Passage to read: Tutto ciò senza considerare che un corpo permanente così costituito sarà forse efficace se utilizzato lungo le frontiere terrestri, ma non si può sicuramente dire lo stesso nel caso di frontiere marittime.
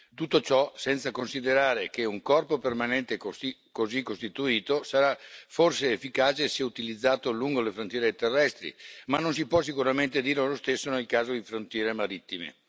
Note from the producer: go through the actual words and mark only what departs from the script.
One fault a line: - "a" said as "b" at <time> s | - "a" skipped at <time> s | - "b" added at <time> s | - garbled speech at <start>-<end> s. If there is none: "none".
none